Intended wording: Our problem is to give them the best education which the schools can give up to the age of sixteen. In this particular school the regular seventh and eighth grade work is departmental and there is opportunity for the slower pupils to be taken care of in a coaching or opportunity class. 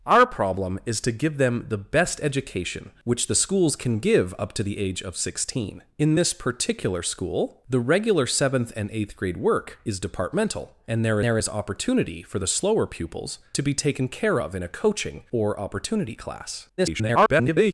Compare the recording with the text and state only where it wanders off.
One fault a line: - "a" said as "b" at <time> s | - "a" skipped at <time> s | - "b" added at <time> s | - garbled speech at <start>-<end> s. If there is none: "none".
- "there" added at 11.2 s
- garbled speech at 16.8-17.7 s